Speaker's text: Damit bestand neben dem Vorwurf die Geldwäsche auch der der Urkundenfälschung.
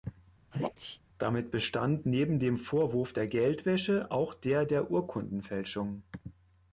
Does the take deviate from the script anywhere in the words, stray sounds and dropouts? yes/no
yes